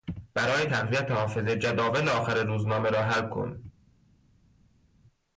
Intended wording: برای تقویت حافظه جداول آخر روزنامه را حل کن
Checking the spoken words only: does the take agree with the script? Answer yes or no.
yes